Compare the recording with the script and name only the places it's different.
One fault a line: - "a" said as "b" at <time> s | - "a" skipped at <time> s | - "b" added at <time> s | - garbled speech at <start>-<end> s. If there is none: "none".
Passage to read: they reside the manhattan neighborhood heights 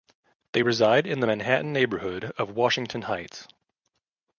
- "in" added at 1.1 s
- "of washington" added at 2.4 s